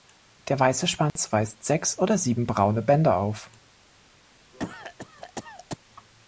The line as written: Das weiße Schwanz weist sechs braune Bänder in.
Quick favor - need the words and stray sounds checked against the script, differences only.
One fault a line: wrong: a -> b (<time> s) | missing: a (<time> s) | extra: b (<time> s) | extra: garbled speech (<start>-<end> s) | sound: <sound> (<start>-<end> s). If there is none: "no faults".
wrong: Das -> Der (0.5 s)
sound: dropout (1.1-1.2 s)
extra: oder sieben (2.0 s)
wrong: in -> auf (3.2 s)
sound: cough (4.5-5.8 s)